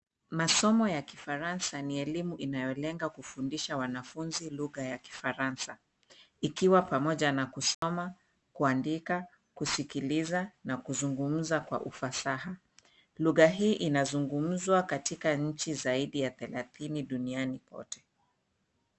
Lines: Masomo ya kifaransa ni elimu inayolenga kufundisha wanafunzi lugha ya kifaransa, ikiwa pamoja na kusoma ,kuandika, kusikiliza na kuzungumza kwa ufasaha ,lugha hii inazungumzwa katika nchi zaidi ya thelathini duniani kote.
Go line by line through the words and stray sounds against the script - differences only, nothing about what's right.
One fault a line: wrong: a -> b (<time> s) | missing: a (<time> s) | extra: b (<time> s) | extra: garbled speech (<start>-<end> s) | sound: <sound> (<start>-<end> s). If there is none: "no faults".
sound: dropout (7.7-7.8 s)